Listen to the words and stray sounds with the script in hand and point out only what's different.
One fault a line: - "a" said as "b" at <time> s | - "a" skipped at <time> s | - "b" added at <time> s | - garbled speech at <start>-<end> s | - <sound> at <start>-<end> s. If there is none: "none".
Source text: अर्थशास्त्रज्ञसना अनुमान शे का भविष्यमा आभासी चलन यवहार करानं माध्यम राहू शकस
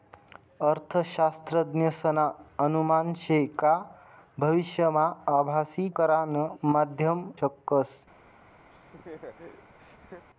- "चलन यवहार" skipped at 5.9 s
- "राहू" skipped at 7.3 s
- laugh at 8.7-10.3 s